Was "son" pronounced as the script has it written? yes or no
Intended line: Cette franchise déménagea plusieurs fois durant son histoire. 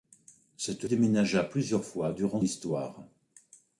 no